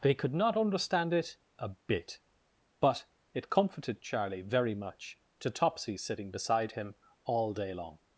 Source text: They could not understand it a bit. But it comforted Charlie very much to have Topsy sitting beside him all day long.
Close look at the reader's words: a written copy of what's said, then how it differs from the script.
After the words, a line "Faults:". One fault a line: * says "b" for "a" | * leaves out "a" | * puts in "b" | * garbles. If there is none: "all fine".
They could not understand it a bit. But it comforted Charlie very much to Topsy sitting beside him all day long.
Faults:
* leaves out "have"